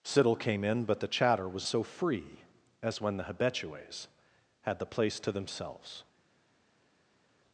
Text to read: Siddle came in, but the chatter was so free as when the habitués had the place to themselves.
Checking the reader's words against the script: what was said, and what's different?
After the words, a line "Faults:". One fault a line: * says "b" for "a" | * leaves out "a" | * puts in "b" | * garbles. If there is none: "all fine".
Siddle came in, but the chatter was so free as when the habitués had the place to themselves.
Faults:
all fine